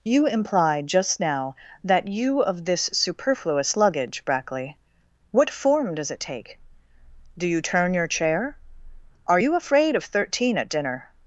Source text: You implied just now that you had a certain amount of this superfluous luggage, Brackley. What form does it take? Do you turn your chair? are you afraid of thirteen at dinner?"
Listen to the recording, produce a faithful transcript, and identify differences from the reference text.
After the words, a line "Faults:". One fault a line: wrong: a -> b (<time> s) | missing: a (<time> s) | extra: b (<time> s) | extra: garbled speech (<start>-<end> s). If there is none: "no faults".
You implied just now that you of this superfluous luggage, Brackley. What form does it take? Do you turn your chair? are you afraid of thirteen at dinner?"
Faults:
missing: had a certain amount (2.4 s)